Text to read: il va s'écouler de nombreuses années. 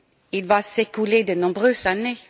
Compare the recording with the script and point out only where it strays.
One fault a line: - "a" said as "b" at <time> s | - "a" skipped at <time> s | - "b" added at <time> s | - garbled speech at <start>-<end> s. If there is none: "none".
none